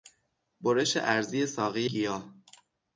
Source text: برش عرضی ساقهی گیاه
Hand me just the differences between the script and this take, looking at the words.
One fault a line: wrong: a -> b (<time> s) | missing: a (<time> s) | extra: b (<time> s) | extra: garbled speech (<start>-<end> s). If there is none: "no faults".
no faults